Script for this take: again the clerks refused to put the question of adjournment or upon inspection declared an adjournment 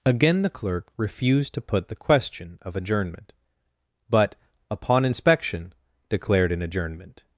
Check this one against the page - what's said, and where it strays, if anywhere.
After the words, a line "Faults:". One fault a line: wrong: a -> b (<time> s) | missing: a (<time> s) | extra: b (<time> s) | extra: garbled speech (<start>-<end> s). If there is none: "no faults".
again the clerk refused to put the question of adjournment but upon inspection declared an adjournment
Faults:
wrong: clerks -> clerk (0.5 s)
wrong: or -> but (4.1 s)